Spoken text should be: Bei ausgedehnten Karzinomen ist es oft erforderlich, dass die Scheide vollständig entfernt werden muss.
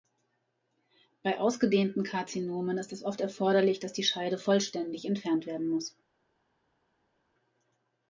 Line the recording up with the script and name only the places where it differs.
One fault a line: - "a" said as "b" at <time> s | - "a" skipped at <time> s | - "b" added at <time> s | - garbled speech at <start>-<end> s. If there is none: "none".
none